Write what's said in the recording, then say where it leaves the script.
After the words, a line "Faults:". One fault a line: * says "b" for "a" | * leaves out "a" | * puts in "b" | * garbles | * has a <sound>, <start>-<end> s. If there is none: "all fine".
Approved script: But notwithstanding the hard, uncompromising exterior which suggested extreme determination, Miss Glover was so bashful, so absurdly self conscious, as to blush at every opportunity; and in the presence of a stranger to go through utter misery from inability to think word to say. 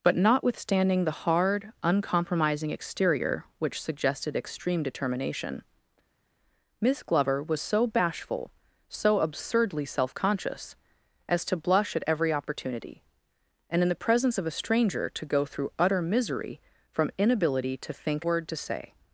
But notwithstanding the hard, uncompromising exterior which suggested extreme determination, Miss Glover was so bashful, so absurdly self conscious, as to blush at every opportunity; and in the presence of a stranger to go through utter misery from inability to think word to say.
Faults:
all fine